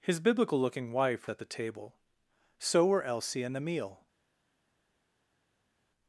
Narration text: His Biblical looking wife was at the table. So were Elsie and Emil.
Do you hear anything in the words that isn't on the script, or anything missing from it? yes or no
yes